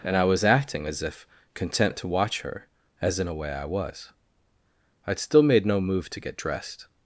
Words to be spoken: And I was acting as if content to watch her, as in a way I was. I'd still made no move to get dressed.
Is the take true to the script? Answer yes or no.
yes